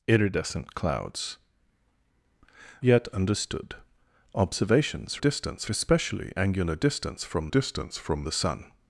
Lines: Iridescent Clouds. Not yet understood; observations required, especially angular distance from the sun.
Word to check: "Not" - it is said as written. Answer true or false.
false